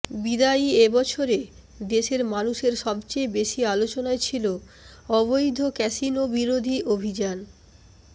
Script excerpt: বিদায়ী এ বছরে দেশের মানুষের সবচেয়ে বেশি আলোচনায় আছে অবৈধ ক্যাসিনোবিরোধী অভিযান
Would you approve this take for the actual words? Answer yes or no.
no